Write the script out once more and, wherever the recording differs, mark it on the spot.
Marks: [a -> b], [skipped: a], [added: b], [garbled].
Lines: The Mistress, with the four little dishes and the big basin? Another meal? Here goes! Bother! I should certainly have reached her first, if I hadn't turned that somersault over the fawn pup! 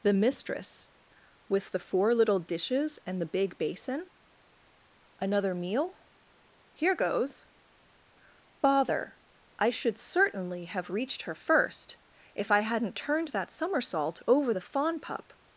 The Mistress, with the four little dishes and the big basin? Another meal? Here goes! Bother! I should certainly have reached her first, if I hadn't turned that somersault over the fawn pup!